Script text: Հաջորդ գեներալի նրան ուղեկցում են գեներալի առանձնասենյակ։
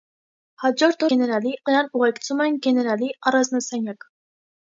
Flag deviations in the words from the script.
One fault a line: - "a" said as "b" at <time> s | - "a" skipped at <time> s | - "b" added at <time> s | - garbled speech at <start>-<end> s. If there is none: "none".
none